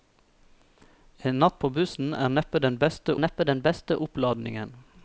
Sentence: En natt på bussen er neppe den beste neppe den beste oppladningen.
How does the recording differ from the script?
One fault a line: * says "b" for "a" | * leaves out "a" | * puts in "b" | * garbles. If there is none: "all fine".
all fine